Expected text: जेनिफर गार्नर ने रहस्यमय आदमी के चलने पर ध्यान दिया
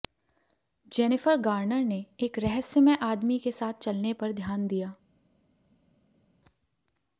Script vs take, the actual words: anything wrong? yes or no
yes